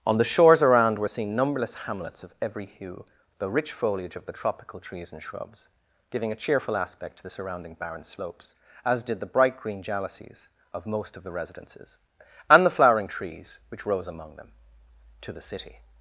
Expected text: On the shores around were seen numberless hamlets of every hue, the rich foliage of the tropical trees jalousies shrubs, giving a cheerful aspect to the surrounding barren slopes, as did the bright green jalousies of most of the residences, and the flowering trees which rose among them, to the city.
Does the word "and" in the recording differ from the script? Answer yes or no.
no